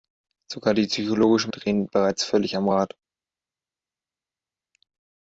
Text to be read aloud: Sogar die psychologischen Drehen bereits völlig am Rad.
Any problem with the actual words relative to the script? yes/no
no